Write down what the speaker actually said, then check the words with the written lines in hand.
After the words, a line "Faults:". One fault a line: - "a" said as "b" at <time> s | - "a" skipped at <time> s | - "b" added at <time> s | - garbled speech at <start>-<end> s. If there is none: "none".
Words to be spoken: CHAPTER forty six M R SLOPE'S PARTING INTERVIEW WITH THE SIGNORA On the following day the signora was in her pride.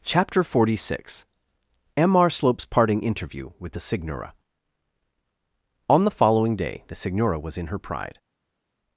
CHAPTER forty six M R SLOPE'S PARTING INTERVIEW WITH THE SIGNORA On the following day the signora was in her pride.
Faults:
none